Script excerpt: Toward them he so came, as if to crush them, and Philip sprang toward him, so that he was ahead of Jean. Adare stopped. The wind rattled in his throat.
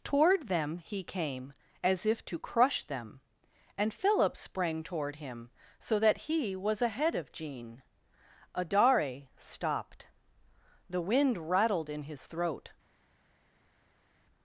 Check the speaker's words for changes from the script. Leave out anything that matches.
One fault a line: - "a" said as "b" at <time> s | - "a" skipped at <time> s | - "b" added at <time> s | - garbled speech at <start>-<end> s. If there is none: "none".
- "so" skipped at 1.0 s